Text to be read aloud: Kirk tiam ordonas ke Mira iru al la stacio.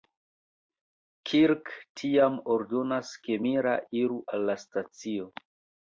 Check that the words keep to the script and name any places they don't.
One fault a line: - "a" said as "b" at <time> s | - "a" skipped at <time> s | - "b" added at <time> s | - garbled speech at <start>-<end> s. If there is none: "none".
none